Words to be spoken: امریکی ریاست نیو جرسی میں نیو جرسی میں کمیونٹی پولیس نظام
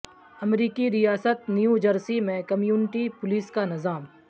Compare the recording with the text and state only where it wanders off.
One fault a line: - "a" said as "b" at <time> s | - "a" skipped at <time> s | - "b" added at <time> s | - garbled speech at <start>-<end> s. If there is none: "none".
- "نیو جرسی میں" skipped at 2.4 s
- "کا" added at 3.5 s